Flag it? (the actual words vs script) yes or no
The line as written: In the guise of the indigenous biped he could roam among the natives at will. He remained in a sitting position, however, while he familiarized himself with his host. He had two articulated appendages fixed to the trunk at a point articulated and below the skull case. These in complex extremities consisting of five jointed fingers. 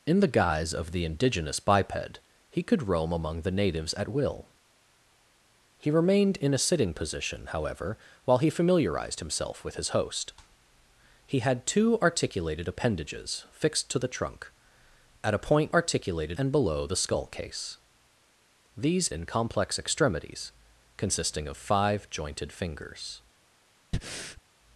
no